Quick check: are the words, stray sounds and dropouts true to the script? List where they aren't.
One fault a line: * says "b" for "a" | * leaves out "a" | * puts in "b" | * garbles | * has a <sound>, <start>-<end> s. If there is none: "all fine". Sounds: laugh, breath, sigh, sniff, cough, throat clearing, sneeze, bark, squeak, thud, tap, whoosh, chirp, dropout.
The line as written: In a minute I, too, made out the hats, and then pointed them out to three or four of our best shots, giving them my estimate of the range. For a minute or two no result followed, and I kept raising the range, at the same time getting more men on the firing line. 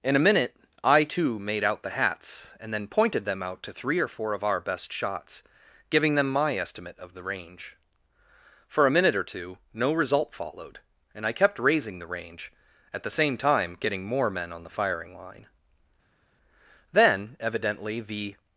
* puts in "Then evidently the"